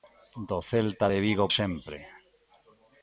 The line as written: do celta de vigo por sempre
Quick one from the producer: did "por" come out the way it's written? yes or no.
no